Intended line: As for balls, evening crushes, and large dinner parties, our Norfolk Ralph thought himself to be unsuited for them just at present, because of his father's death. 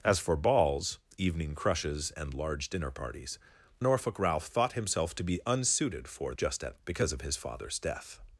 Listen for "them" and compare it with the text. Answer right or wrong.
wrong